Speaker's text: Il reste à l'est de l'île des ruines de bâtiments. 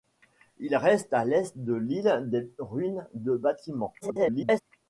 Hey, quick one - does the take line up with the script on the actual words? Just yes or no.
no